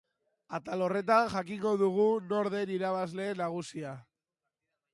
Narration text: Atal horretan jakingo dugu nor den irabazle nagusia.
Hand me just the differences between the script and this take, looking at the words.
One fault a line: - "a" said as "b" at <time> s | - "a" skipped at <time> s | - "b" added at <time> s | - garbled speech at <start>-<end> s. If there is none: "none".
none